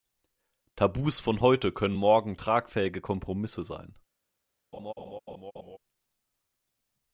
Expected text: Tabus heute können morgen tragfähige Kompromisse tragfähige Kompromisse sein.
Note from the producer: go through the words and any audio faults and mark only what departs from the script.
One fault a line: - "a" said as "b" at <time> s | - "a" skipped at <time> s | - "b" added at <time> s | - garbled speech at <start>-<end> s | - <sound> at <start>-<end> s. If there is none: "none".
- "von" added at 1.2 s
- "tragfähige Kompromisse" skipped at 3.6 s
- laugh at 4.7-5.8 s